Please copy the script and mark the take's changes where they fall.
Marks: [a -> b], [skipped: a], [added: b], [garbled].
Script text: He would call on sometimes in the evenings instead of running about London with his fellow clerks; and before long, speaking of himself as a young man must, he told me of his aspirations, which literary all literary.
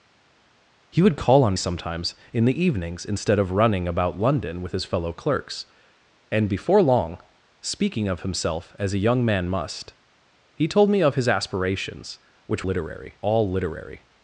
He would call on sometimes in the evenings instead of running about London with his fellow clerks; and before long, speaking of himself as a young man must, he told me of his aspirations, which literary all literary.